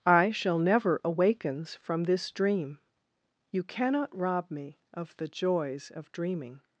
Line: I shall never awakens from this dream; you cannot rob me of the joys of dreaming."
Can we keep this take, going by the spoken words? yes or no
yes